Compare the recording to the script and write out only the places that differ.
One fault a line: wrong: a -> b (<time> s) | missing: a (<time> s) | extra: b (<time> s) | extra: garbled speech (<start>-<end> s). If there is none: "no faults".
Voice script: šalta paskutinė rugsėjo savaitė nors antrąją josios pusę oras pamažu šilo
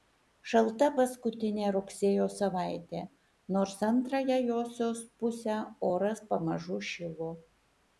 no faults